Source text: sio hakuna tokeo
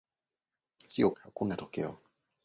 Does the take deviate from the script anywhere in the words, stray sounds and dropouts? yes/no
no